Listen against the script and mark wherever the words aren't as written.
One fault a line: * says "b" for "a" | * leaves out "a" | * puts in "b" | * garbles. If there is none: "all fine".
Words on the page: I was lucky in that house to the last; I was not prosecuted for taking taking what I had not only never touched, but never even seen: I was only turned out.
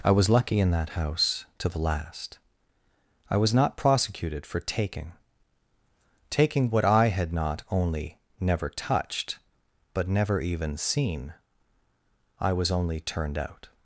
all fine